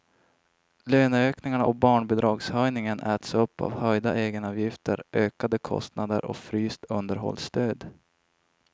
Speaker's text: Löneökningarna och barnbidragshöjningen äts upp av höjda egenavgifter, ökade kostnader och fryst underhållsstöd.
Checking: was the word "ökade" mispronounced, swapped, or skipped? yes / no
no